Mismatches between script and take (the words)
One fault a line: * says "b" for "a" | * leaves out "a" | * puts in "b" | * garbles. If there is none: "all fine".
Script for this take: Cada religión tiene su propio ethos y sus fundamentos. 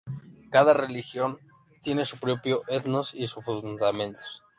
all fine